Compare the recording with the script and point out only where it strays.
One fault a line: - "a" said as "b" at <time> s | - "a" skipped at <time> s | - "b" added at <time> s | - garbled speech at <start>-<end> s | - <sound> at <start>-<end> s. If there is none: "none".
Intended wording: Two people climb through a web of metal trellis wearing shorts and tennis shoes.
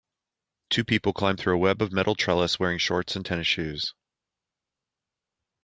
none